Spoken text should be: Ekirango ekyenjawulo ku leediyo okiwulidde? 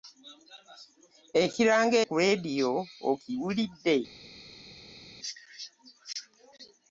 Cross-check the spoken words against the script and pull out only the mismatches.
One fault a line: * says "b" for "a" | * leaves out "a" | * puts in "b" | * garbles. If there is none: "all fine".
* leaves out "ekyenjawulo"